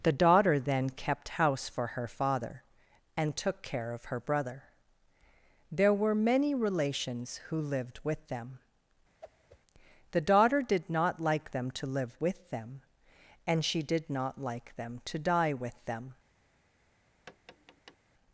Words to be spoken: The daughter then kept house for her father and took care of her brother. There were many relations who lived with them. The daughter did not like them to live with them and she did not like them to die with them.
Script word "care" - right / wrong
right